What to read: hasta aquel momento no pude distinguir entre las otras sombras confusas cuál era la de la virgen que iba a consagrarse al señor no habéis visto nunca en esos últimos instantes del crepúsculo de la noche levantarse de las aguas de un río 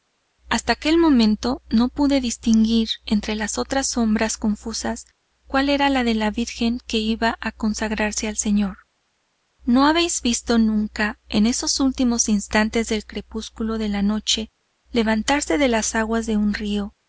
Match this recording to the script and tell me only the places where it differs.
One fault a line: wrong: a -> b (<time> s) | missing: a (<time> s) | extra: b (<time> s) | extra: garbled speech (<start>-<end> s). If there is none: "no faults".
no faults